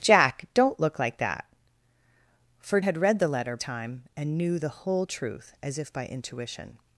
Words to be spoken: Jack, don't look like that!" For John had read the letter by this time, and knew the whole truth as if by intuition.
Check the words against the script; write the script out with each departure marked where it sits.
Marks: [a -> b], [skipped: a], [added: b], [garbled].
Jack, don't look like that!" For [skipped: John] had read the letter [skipped: by this] time, and knew the whole truth as if by intuition.